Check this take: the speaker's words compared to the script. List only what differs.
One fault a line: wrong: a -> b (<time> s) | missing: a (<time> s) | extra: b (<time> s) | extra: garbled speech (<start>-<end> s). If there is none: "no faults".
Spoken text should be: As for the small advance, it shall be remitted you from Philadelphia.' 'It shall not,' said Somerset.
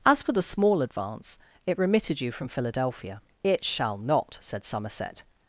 missing: shall be (1.8 s)